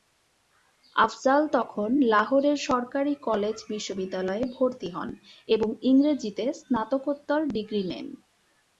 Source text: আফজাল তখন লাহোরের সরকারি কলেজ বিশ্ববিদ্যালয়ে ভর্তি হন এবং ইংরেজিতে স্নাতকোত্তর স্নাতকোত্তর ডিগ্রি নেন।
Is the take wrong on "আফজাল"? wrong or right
right